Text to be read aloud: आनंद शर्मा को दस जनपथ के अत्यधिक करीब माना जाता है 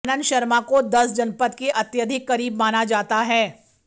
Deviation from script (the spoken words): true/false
false